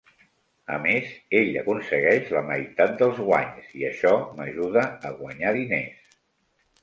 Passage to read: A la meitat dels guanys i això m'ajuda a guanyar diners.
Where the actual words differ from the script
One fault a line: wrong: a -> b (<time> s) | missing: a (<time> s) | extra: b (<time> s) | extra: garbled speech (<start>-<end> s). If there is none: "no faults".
extra: més ell aconsegueix (0.8 s)